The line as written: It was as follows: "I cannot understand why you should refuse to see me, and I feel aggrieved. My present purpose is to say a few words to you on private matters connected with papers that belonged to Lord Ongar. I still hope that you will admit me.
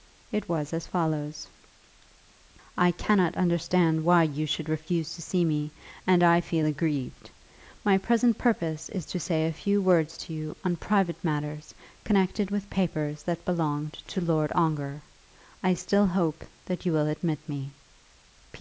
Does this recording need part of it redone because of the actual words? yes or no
no